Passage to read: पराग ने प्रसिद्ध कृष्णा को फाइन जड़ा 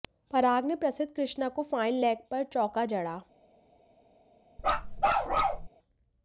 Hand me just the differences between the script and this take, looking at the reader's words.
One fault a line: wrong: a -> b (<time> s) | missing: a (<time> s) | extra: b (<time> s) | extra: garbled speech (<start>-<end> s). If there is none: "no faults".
extra: लेग पर चौका (2.0 s)